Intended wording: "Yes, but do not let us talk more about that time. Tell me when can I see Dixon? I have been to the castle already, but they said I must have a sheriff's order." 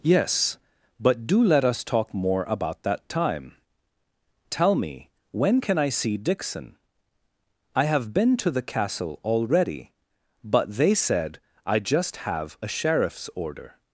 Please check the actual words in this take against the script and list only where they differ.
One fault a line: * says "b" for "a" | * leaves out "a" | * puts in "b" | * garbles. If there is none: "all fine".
* leaves out "not"
* says "just" for "must"